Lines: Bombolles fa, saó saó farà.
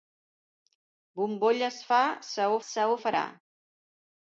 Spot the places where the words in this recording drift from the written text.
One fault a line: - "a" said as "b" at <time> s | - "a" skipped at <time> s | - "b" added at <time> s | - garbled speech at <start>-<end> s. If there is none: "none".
none